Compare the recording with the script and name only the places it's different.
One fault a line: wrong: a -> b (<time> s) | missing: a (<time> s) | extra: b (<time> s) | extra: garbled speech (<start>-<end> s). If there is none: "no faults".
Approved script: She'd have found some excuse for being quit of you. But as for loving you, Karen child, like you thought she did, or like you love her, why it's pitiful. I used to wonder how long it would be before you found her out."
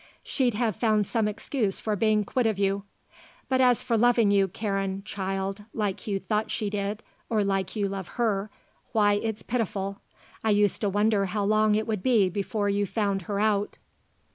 no faults